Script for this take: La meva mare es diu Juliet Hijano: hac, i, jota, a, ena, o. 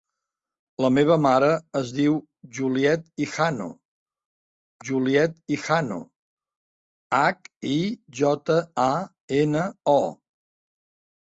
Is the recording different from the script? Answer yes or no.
yes